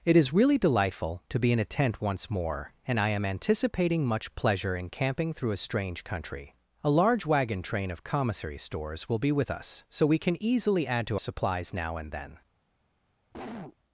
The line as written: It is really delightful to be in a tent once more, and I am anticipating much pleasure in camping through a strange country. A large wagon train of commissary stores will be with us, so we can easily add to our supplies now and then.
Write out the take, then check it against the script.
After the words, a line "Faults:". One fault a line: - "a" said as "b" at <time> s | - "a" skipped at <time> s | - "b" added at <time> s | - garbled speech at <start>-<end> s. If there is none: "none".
It is really delightful to be in a tent once more, and I am anticipating much pleasure in camping through a strange country. A large wagon train of commissary stores will be with us, so we can easily add to supplies now and then.
Faults:
- "our" skipped at 11.2 s